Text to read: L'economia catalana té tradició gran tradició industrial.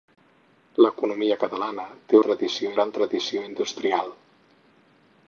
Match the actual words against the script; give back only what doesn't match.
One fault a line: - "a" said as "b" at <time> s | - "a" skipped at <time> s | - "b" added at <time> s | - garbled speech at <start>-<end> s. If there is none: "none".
none